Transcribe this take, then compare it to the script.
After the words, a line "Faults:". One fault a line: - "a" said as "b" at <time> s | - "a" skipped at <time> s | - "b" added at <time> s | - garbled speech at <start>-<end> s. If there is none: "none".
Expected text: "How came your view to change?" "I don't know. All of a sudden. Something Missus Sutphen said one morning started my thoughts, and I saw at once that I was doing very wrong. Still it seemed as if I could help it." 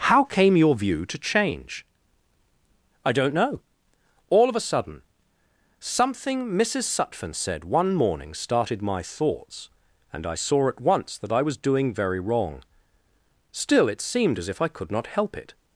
"How came your view to change?" "I don't know. All of a sudden. Something Missus Sutphen said one morning started my thoughts, and I saw at once that I was doing very wrong. Still it seemed as if I could not help it."
Faults:
- "not" added at 14.9 s